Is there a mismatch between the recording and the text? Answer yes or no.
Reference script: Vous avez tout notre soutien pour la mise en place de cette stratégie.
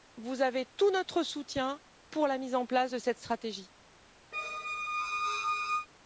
no